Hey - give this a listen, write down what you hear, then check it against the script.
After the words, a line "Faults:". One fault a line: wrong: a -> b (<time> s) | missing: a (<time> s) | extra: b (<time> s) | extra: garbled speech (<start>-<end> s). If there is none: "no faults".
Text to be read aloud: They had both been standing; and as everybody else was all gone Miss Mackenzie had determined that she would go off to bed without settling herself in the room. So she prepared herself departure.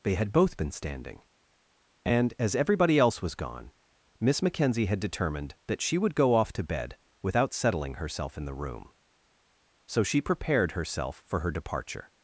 They had both been standing; and as everybody else was gone Miss Mackenzie had determined that she would go off to bed without settling herself in the room. So she prepared herself for her departure.
Faults:
missing: all (3.4 s)
extra: for her (11.3 s)